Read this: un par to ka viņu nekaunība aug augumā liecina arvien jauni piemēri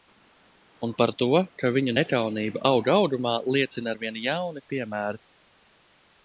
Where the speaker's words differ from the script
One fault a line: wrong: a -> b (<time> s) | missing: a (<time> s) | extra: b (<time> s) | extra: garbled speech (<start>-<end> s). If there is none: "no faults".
no faults